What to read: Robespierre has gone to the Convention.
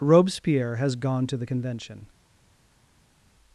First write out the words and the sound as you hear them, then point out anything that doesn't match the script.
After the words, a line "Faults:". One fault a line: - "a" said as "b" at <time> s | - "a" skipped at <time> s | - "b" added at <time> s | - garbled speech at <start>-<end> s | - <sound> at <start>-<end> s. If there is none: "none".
Robespierre has gone to the Convention.
Faults:
none